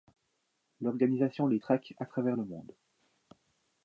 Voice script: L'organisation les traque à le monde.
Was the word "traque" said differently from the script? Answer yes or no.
no